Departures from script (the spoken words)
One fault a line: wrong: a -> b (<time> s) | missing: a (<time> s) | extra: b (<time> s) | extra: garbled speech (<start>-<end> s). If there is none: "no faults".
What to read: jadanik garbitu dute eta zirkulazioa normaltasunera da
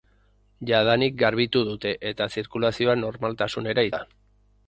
no faults